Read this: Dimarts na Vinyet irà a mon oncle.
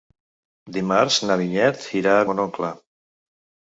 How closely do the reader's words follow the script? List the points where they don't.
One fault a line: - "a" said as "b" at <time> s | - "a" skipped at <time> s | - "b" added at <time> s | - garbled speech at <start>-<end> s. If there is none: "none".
none